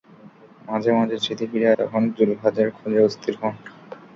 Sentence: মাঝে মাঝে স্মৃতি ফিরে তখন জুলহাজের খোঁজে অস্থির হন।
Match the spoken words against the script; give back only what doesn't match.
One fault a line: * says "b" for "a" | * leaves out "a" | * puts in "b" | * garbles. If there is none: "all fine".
all fine